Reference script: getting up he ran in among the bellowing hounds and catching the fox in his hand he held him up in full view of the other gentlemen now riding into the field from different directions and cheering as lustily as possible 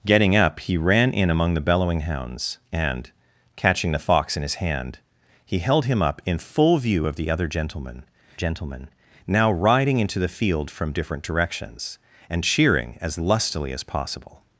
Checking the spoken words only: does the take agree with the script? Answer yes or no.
no